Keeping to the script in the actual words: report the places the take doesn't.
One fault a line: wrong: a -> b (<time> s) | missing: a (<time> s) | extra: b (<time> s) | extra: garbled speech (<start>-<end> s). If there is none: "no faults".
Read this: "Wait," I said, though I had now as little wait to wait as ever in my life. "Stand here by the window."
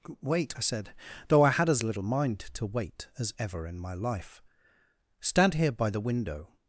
missing: now (1.7 s)
wrong: wait -> mind (2.0 s)